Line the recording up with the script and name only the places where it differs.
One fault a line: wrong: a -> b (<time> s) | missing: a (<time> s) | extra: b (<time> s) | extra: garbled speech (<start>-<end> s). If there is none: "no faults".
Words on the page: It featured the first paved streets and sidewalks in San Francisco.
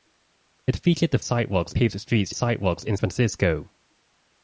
wrong: first -> sidewalks (1.2 s)
missing: and (2.3 s)
missing: San (3.0 s)